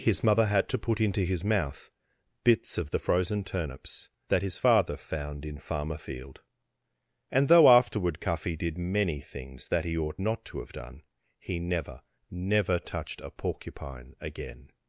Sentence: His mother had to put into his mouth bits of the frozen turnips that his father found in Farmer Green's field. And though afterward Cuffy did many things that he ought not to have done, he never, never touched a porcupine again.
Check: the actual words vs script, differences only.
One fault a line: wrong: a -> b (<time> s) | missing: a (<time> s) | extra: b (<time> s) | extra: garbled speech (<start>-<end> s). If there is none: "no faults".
missing: Green's (6.0 s)